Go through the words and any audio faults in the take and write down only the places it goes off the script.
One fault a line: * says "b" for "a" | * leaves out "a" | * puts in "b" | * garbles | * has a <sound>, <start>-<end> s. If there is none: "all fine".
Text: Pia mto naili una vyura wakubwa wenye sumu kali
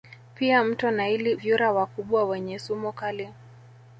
* leaves out "una"